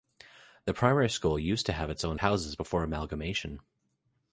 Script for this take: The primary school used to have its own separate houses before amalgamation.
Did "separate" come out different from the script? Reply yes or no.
yes